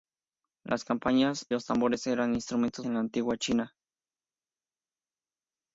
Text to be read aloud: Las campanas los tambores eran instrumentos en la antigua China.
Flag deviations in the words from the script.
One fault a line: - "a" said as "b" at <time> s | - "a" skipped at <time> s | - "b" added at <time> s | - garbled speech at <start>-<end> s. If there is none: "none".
none